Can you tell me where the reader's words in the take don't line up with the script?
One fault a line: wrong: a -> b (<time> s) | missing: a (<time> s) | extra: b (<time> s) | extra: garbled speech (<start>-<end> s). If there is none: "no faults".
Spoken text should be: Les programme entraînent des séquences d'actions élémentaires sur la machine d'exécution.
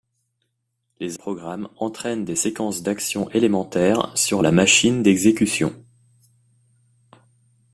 no faults